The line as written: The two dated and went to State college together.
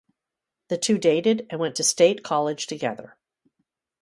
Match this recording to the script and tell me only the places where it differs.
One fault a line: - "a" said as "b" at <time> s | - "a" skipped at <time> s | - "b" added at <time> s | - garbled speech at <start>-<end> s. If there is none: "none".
none